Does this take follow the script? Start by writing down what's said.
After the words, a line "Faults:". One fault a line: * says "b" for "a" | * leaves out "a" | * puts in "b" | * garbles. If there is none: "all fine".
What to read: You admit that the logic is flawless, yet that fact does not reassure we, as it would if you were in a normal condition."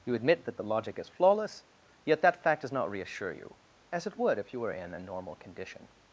You admit that the logic is flawless, yet that fact does not reassure you, as it would if you were in a normal condition."
Faults:
* says "you" for "we"